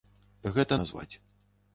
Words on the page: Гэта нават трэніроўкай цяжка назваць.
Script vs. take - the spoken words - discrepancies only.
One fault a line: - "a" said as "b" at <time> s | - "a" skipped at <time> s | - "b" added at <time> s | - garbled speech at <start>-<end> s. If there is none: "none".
- "нават трэніроўкай цяжка" skipped at 0.8 s